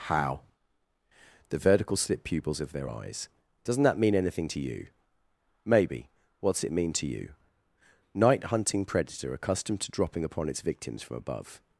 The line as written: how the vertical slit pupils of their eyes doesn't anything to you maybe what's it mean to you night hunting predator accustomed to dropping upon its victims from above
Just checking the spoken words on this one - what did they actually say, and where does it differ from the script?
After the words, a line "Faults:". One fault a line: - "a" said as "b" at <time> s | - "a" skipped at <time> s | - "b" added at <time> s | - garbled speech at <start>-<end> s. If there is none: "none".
how the vertical slit pupils of their eyes doesn't that mean anything to you maybe what's it mean to you night hunting predator accustomed to dropping upon its victims from above
Faults:
- "that mean" added at 3.8 s